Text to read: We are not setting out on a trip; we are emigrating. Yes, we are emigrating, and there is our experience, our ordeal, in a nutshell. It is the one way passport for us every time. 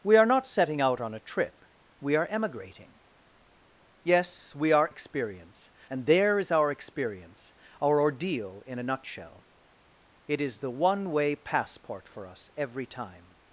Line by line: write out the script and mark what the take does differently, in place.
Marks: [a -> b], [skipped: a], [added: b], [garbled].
We are not setting out on a trip; we are emigrating. Yes, we are [emigrating, -> experience] and there is our experience, our ordeal, in a nutshell. It is the one way passport for us every time.